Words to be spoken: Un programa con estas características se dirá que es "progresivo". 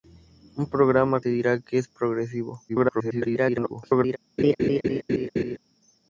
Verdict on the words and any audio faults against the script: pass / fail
fail